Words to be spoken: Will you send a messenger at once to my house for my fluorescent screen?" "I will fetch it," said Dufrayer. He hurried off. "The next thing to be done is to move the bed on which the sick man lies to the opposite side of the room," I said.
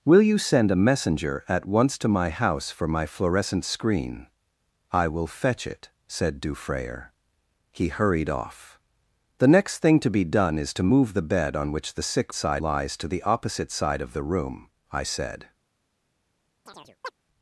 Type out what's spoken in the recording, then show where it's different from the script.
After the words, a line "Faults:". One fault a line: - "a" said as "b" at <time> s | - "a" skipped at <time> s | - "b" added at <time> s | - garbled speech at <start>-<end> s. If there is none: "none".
Will you send a messenger at once to my house for my fluorescent screen?" "I will fetch it," said Dufrayer. He hurried off. "The next thing to be done is to move the bed on which the sick side lies to the opposite side of the room," I said.
Faults:
- "man" said as "side" at 12.3 s